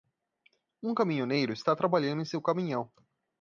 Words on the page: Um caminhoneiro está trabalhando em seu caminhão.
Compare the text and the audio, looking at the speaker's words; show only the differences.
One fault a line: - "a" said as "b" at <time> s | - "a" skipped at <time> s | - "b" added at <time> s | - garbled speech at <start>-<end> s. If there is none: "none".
none